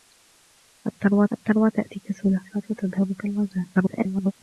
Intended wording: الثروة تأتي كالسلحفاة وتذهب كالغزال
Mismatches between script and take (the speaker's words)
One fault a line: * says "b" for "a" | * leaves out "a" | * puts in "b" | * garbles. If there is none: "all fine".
* puts in "الثروة"
* garbles